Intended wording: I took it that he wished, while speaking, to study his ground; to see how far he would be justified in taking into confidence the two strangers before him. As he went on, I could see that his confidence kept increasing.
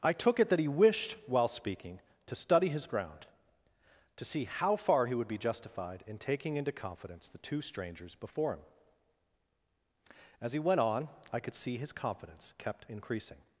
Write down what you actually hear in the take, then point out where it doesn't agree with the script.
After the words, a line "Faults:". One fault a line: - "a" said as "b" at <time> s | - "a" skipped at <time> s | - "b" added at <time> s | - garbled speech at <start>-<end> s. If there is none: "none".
I took it that he wished, while speaking, to study his ground; to see how far he would be justified in taking into confidence the two strangers before him. As he went on, I could see his confidence kept increasing.
Faults:
- "that" skipped at 11.8 s